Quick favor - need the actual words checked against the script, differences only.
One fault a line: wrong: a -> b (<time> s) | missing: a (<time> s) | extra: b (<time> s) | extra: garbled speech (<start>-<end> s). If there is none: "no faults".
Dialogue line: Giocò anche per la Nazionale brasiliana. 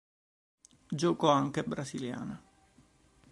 missing: per la Nazionale (1.6 s)